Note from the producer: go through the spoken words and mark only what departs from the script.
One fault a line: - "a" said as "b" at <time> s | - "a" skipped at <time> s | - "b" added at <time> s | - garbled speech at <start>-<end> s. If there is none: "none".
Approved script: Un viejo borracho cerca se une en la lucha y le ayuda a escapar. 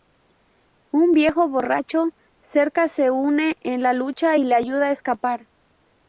none